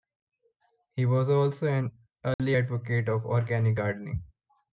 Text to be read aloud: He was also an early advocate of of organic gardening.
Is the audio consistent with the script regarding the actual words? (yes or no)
no